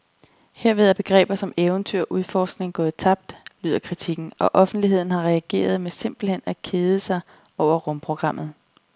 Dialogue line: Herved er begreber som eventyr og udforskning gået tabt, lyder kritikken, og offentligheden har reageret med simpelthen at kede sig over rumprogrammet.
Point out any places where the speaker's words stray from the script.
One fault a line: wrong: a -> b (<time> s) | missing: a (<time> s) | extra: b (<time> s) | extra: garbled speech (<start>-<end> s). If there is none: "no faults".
no faults